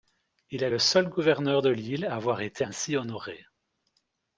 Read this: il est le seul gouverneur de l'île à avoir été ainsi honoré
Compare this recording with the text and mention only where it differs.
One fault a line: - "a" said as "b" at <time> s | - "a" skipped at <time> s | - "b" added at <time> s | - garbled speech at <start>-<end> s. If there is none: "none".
none